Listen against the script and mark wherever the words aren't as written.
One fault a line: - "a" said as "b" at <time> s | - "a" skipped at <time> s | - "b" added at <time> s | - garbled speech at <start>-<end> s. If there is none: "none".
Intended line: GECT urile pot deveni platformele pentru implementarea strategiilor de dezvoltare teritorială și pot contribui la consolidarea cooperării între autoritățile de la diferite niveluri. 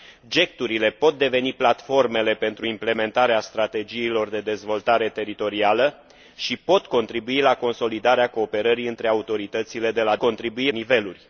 - "diferite" said as "contribui" at 10.2 s